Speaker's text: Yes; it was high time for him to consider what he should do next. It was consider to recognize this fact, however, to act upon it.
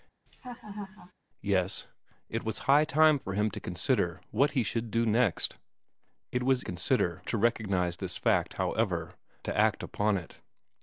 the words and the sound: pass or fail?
fail